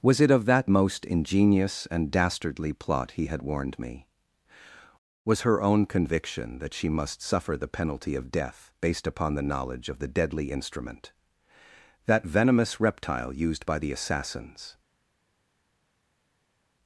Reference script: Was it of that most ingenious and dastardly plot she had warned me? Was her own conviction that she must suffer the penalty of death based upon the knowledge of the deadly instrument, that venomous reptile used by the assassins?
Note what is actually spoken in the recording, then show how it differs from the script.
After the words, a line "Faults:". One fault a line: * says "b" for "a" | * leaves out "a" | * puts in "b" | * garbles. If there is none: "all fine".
Was it of that most ingenious and dastardly plot he had warned me? Was her own conviction that she must suffer the penalty of death based upon the knowledge of the deadly instrument, that venomous reptile used by the assassins?
Faults:
* says "he" for "she"